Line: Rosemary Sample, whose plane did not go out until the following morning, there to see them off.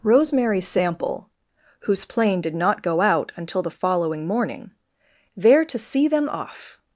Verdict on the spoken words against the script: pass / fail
pass